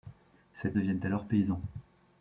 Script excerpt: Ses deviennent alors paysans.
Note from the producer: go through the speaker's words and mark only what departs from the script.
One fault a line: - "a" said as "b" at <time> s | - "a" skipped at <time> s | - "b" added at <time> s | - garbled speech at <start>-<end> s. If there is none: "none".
none